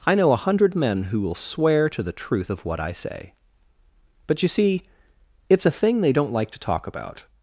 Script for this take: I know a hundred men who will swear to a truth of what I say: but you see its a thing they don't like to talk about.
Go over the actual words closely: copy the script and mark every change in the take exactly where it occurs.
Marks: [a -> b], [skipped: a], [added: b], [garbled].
I know a hundred men who will swear to [a -> the] truth of what I say: but you see its a thing they don't like to talk about.